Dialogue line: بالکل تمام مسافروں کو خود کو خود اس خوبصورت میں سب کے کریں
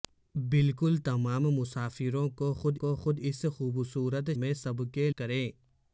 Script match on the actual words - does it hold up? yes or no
yes